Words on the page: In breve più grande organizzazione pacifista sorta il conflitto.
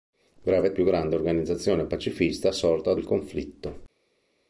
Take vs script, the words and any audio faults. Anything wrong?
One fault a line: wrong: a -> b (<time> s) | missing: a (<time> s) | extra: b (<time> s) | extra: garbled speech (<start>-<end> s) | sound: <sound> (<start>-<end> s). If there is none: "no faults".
no faults